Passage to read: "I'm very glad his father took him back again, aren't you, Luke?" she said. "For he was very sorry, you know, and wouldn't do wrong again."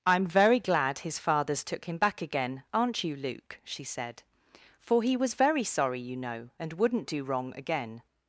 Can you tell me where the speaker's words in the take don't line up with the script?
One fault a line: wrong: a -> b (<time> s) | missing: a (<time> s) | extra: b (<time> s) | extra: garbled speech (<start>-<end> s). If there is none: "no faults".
wrong: father -> fathers (1.2 s)